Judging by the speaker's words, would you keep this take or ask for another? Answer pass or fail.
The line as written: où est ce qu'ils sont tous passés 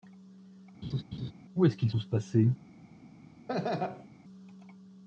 fail